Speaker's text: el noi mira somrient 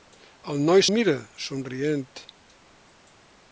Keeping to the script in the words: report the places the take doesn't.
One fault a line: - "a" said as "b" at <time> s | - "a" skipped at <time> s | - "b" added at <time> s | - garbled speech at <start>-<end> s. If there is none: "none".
none